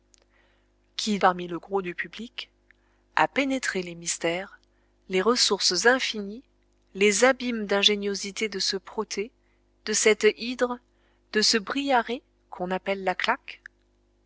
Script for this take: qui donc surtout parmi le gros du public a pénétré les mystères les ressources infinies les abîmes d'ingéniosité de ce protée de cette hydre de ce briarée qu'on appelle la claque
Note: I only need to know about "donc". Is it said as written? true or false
false